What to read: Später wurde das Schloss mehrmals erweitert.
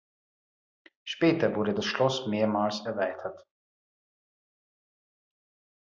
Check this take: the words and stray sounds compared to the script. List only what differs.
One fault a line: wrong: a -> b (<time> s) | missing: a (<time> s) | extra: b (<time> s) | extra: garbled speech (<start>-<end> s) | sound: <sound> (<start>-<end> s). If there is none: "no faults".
no faults